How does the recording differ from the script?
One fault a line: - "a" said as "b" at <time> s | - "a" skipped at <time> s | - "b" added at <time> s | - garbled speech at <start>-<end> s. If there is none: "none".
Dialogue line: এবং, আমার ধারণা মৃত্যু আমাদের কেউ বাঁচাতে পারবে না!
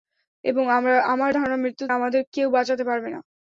none